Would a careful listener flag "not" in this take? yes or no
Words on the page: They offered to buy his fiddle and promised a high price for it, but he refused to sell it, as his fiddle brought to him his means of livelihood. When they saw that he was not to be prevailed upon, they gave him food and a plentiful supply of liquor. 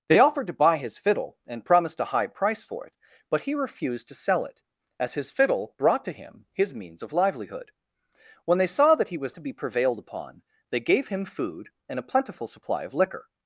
yes